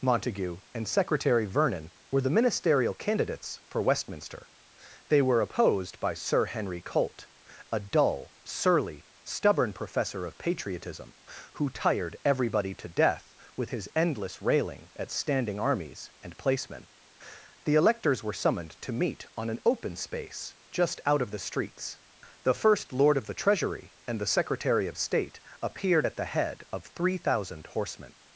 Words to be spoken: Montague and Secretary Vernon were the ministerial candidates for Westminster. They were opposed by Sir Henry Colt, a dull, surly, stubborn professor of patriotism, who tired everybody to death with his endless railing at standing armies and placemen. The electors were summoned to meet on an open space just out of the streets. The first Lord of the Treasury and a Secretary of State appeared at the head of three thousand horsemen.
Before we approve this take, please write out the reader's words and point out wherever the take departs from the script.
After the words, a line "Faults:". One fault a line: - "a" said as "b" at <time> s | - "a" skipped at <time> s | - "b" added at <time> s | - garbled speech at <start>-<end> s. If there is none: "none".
Montague and Secretary Vernon were the ministerial candidates for Westminster. They were opposed by Sir Henry Colt, a dull, surly, stubborn professor of patriotism, who tired everybody to death with his endless railing at standing armies and placemen. The electors were summoned to meet on an open space just out of the streets. The first Lord of the Treasury and the Secretary of State appeared at the head of three thousand horsemen.
Faults:
- "a" said as "the" at 24.2 s